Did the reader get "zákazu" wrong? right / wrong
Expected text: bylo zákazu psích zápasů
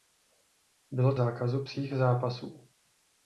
right